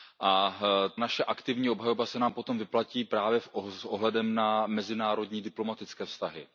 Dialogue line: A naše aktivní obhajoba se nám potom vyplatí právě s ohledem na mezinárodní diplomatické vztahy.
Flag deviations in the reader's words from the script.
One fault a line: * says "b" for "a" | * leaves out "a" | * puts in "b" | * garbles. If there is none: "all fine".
all fine